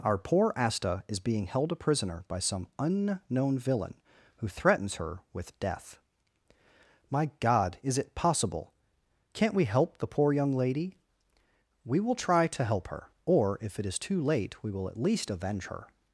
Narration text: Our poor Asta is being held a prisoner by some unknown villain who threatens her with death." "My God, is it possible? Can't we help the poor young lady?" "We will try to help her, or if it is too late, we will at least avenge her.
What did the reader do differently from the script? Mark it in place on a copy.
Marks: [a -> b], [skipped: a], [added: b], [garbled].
Our poor Asta is being held a prisoner by some unknown villain who threatens her with death." "My God, is it possible? Can't we help the poor young lady?" "We will try to help her, or if it is too late, we will at least avenge her.